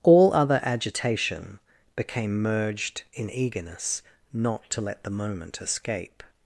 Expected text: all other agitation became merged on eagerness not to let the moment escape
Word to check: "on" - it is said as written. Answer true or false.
false